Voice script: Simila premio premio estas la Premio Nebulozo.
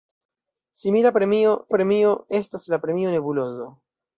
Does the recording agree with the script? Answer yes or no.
yes